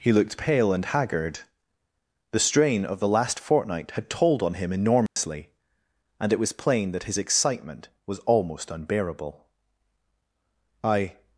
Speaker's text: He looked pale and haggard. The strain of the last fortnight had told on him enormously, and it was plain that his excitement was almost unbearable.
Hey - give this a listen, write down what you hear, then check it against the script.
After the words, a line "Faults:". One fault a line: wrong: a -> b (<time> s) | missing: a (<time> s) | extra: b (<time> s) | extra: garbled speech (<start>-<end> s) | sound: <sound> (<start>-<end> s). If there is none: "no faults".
He looked pale and haggard. The strain of the last fortnight had told on him enormously, and it was plain that his excitement was almost unbearable. 'I
Faults:
sound: dropout (5.1-5.2 s)
extra: I (10.8 s)